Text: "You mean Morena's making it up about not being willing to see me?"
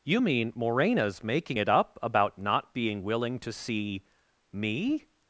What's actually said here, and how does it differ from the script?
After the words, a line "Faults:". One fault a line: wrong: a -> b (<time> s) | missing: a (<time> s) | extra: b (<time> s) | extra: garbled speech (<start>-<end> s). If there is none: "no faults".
"You mean Morena's making it up about not being willing to see me?"
Faults:
no faults